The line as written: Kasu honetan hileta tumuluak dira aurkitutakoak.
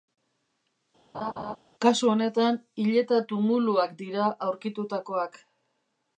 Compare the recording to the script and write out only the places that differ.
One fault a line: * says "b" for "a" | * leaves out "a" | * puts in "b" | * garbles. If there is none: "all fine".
all fine